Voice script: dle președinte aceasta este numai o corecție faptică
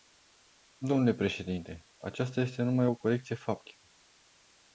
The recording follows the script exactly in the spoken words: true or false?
true